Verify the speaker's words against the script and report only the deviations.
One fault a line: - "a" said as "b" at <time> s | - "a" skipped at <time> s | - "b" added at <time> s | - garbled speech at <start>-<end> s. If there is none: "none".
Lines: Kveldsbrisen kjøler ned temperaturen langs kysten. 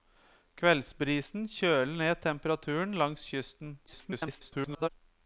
- garbled speech at 3.9-4.9 s